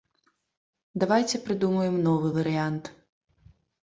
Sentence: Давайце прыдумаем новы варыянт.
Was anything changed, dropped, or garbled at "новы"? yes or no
no